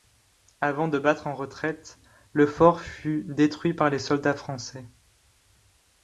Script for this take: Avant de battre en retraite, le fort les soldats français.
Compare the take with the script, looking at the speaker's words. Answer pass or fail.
fail